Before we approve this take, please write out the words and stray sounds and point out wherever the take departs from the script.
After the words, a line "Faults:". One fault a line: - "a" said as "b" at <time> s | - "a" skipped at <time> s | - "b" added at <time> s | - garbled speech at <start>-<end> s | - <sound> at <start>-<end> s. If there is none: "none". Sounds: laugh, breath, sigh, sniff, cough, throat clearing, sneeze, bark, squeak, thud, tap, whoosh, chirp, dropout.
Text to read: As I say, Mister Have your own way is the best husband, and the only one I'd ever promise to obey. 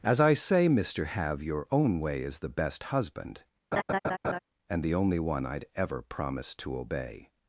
As I say, Mister Have your own way is the best husband, and the only one I'd ever promise to obey.
Faults:
- laugh at 3.7-4.4 s